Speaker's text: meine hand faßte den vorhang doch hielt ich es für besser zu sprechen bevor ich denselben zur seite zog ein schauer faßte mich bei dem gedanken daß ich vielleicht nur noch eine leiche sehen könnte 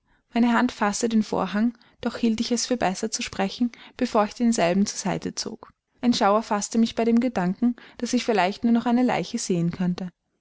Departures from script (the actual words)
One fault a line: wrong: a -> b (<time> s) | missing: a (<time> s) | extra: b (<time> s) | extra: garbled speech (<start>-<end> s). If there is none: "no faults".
no faults